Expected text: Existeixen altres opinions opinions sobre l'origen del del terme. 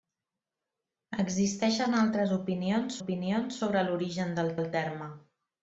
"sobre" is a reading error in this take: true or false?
false